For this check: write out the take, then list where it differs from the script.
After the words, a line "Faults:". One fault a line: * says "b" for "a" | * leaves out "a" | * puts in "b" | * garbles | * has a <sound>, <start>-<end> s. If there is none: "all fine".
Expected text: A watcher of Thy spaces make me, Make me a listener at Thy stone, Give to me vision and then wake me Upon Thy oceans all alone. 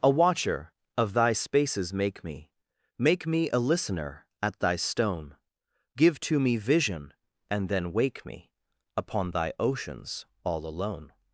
A watcher of Thy spaces make me, Make me a listener at Thy stone, Give to me vision and then wake me Upon Thy oceans all alone.
Faults:
all fine